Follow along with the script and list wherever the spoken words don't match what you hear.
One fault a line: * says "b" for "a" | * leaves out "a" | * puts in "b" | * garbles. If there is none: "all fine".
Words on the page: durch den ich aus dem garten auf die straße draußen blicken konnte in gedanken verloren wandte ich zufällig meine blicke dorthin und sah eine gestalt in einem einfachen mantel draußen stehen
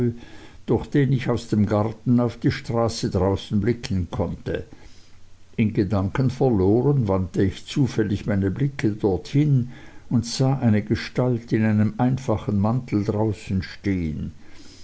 all fine